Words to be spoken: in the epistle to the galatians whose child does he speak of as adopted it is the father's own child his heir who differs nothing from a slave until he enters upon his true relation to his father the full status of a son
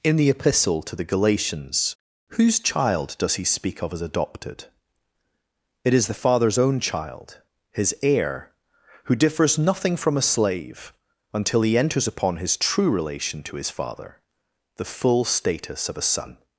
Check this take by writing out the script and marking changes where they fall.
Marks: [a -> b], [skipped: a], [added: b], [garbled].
in the epistle to the galatians whose child does he speak of as adopted it is the father's own child his heir who differs nothing from a slave until he enters upon his true relation to his father the full status of a son